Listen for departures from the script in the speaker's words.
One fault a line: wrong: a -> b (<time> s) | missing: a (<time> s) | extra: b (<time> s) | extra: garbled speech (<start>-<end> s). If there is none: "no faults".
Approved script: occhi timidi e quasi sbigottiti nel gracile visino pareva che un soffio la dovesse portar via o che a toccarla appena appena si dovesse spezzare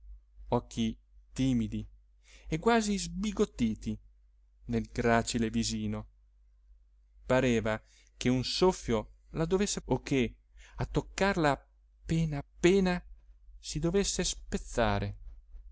missing: portar via (9.8 s)